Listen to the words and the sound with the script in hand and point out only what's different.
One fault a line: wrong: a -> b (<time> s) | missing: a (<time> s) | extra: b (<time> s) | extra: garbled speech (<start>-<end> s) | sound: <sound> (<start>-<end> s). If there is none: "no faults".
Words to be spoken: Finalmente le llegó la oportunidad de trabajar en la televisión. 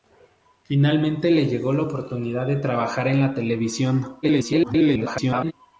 extra: garbled speech (4.2-5.5 s)